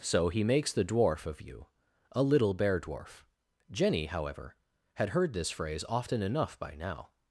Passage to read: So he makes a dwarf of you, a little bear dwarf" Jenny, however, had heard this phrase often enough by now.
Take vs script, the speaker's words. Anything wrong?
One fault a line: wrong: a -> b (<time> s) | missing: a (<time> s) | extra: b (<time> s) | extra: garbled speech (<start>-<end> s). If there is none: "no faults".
wrong: a -> the (0.7 s)